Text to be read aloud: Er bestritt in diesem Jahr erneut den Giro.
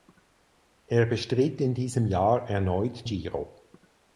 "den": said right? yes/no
no